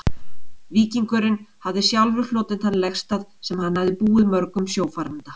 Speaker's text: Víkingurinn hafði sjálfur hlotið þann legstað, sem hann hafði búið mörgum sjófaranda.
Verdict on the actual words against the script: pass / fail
pass